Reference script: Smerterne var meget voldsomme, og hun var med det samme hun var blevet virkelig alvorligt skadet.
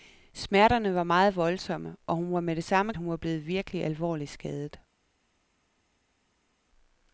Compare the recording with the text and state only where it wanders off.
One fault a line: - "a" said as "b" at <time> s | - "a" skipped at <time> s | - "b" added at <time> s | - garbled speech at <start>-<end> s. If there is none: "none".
none